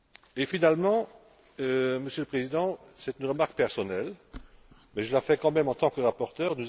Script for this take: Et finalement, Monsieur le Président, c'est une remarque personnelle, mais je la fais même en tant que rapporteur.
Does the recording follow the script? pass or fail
fail